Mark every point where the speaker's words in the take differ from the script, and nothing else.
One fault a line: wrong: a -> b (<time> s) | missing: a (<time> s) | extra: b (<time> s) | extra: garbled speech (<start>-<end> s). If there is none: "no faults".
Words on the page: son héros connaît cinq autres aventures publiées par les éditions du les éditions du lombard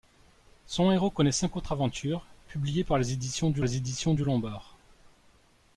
no faults